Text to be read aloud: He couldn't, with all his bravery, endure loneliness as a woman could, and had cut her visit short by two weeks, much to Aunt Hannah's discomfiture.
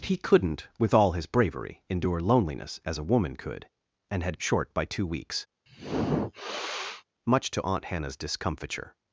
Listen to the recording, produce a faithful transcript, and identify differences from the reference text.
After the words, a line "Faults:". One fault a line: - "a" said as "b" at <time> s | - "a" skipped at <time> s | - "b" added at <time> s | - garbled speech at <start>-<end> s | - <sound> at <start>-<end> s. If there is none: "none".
He couldn't, with all his bravery, endure loneliness as a woman could, and had short by two weeks, much to Aunt Hannah's discomfiture.
Faults:
- "cut her visit" skipped at 4.4 s
- sniff at 5.7-7.0 s